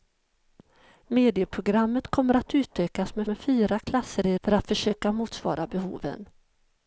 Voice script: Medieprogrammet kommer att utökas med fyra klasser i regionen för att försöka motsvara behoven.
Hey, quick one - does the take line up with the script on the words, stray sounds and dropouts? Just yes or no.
no